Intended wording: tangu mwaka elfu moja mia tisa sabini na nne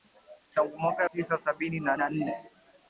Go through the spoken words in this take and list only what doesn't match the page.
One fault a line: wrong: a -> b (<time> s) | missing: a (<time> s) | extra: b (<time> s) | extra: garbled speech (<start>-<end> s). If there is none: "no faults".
missing: elfu moja mia (1.0 s)
extra: na (1.9 s)